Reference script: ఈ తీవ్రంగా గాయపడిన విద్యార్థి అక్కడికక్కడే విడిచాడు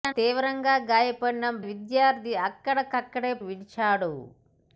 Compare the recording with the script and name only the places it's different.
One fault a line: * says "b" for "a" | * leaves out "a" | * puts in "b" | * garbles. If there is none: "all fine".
all fine